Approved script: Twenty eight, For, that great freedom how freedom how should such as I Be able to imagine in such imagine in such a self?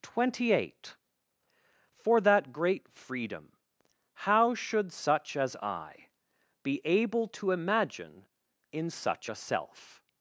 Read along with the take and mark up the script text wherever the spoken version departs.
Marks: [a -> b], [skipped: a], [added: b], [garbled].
Twenty eight, For, that great freedom how [skipped: freedom how] should such as I Be able to imagine in such [skipped: imagine in such] a self?